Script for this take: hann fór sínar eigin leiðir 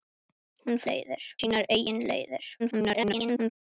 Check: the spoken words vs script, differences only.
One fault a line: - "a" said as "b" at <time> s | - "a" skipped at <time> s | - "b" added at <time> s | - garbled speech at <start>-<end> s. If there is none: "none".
- "fór" said as "leiðir" at 0.9 s
- garbled speech at 2.6-3.5 s